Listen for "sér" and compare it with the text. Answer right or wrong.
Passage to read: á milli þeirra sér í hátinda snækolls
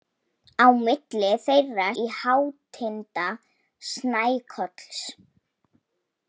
wrong